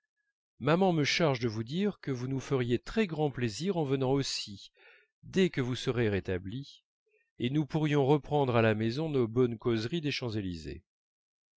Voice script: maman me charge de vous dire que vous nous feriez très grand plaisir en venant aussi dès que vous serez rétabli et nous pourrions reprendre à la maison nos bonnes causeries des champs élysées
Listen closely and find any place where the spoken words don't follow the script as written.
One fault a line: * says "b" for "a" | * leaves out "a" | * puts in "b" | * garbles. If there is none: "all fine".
all fine